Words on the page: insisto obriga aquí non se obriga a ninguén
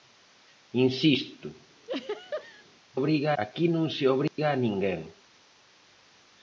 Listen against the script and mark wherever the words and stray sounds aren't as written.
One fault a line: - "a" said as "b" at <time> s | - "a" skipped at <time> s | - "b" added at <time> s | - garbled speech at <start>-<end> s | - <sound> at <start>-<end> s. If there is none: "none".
- laugh at 1.8-2.6 s
- dropout at 4.3-4.4 s